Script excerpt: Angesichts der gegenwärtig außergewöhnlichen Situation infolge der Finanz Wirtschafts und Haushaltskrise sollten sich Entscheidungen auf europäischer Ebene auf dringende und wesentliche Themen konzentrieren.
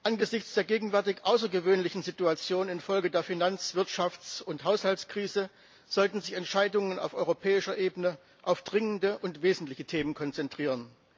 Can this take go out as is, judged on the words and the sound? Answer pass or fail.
pass